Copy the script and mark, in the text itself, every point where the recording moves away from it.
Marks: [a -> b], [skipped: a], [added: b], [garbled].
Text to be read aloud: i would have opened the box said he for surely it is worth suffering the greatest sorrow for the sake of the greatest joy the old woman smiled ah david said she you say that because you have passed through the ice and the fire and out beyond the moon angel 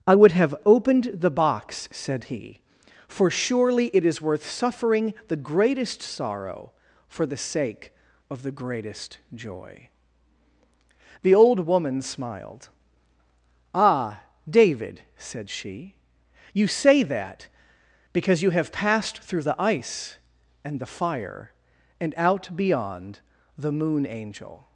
i would have opened the box said he for surely it is worth suffering the greatest sorrow for the sake of the greatest joy the old woman smiled ah david said she you say that because you have passed through the ice and the fire and out beyond the moon angel